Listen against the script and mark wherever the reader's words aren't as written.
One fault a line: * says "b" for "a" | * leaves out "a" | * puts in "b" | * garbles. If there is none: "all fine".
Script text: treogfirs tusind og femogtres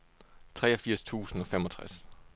all fine